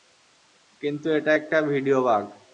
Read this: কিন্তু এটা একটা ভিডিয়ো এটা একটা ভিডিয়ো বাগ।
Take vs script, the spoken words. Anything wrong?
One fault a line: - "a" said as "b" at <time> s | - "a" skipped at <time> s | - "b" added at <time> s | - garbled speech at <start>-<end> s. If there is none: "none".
- "এটা একটা ভিডিয়ো" skipped at 2.0 s